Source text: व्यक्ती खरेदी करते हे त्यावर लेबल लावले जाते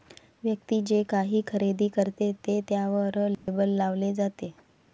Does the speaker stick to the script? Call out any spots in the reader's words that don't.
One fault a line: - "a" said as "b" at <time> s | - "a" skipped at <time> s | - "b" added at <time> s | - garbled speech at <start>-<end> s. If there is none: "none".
- "जे काही" added at 0.8 s
- "हे" said as "ते" at 2.5 s